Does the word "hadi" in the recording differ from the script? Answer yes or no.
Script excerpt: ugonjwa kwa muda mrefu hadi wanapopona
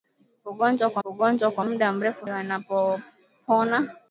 yes